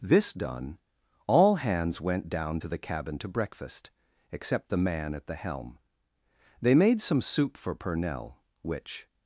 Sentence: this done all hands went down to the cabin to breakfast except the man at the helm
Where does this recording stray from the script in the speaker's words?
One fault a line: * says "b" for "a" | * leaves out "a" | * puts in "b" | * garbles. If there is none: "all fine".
* puts in "they made some soup for purnell which"